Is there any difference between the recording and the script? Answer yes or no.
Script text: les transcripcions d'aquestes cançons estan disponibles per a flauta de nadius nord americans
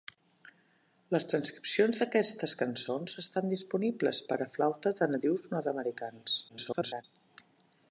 yes